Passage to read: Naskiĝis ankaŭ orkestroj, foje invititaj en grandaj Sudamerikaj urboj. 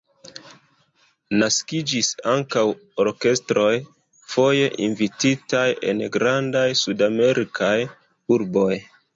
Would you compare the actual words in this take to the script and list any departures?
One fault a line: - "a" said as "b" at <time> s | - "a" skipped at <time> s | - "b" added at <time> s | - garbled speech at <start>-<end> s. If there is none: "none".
none